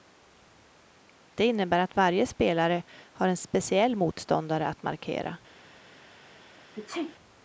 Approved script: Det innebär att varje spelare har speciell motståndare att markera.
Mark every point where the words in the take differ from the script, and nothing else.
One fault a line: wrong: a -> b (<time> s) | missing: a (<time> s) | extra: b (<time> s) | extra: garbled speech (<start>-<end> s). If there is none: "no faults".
extra: en (3.3 s)